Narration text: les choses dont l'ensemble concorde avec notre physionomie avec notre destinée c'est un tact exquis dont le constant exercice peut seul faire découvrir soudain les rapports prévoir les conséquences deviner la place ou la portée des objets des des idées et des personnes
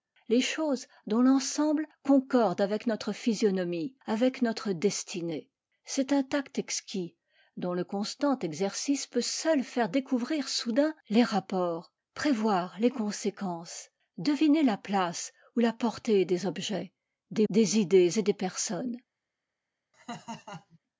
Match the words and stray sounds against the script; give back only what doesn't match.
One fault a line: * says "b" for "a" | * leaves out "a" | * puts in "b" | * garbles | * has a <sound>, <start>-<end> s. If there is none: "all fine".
* has a laugh, 19.9-20.8 s